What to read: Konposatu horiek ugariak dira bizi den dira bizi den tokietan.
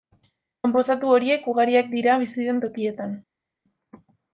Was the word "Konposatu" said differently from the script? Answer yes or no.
no